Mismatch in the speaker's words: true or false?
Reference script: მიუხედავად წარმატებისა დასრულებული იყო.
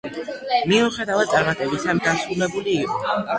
false